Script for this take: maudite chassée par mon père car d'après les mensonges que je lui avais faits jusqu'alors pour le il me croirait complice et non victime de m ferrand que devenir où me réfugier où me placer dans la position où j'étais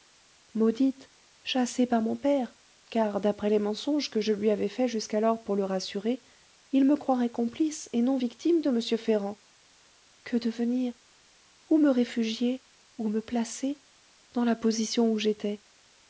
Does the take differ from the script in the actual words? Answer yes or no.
yes